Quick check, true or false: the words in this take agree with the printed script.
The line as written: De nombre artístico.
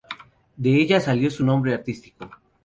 false